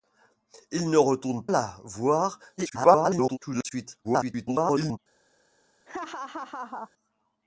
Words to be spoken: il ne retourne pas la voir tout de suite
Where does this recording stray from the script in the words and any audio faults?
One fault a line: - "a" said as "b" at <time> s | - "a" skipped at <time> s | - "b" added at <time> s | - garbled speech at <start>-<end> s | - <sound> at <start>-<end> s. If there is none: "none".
- "pas" skipped at 1.5 s
- garbled speech at 2.6-3.4 s
- garbled speech at 4.0-5.0 s
- laugh at 5.9-6.9 s